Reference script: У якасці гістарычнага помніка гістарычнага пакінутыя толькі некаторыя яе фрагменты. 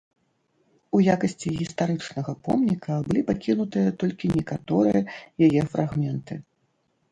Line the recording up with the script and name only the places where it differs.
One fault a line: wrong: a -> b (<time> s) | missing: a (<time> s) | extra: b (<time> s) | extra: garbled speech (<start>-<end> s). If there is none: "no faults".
wrong: гістарычнага -> былі (3.1 s)